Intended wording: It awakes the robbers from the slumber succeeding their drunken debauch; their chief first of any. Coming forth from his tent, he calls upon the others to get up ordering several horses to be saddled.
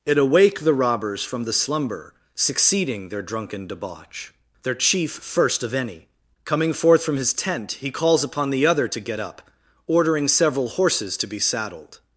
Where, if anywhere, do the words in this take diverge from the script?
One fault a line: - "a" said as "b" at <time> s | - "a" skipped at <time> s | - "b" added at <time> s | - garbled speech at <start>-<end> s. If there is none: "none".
- "awakes" said as "awake" at 0.2 s
- "others" said as "other" at 8.7 s